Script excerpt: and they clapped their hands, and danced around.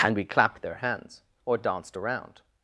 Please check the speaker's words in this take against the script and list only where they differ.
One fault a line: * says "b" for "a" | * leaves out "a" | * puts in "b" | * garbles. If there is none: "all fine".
* says "we" for "they"
* says "or" for "and"